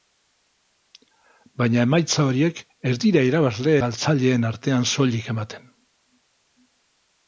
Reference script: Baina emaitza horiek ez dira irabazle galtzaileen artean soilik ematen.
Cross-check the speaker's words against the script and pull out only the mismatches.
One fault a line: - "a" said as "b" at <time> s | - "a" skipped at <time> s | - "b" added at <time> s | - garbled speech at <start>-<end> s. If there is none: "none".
none